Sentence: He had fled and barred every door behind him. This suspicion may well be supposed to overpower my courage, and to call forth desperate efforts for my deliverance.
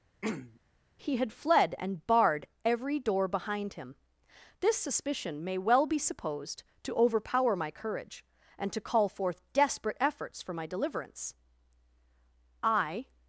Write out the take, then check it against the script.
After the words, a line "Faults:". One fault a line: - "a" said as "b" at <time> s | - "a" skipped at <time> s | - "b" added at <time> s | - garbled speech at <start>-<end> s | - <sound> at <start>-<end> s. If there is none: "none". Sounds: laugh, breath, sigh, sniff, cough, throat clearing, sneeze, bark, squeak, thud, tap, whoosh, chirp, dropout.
He had fled and barred every door behind him. This suspicion may well be supposed to overpower my courage, and to call forth desperate efforts for my deliverance. I
Faults:
- throat clearing at 0.2-0.6 s
- "I" added at 12.6 s